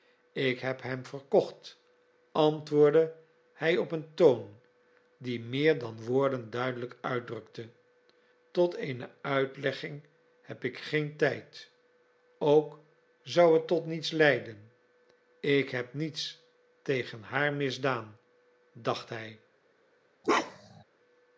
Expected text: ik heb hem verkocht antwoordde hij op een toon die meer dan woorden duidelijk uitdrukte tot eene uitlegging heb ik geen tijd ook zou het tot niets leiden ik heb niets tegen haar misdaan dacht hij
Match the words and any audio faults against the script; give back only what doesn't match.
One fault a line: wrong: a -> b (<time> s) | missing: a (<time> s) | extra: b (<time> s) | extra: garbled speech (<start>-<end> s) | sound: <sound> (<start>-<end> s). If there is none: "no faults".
sound: bark (20.2-20.8 s)